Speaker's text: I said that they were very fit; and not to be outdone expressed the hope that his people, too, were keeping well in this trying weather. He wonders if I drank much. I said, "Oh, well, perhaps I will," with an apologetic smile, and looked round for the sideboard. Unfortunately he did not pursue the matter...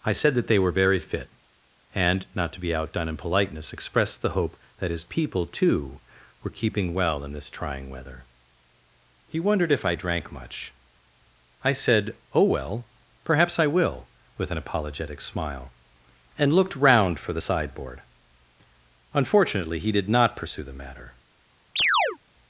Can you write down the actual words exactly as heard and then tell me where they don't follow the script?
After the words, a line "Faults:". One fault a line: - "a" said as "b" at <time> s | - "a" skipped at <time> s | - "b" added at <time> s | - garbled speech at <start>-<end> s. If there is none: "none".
I said that they were very fit; and not to be outdone in politeness, expressed the hope that his people, too, were keeping well in this trying weather. He wondered if I drank much. I said, "Oh, well, perhaps I will," with an apologetic smile, and looked round for the sideboard. Unfortunately he did not pursue the matter...
Faults:
- "in politeness" added at 3.1 s
- "wonders" said as "wondered" at 9.4 s